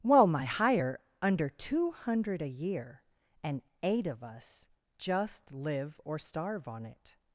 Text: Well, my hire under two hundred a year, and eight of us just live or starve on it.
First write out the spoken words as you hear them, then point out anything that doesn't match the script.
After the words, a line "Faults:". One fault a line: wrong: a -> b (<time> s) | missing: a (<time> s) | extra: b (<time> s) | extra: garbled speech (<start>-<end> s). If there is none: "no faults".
Well, my hire under two hundred a year, and eight of us just live or starve on it.
Faults:
no faults